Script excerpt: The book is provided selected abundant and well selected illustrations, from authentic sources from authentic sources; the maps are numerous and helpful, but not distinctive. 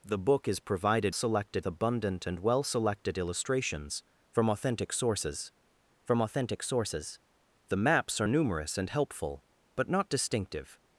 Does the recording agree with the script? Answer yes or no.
yes